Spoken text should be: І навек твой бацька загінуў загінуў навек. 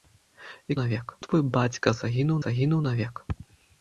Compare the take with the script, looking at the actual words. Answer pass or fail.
pass